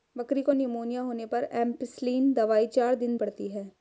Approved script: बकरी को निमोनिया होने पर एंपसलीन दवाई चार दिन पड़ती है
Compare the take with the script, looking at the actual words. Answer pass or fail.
pass